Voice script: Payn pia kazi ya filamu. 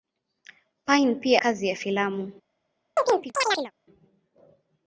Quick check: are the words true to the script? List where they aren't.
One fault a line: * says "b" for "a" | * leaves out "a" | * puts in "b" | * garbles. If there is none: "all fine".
all fine